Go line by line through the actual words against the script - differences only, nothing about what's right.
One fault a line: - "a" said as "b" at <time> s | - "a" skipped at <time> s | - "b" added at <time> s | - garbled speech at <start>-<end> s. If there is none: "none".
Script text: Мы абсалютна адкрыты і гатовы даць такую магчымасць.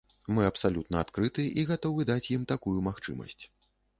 - "ім" added at 2.4 s